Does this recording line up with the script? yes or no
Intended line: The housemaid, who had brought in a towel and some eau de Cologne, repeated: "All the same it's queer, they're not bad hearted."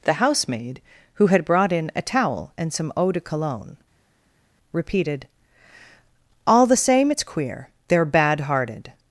no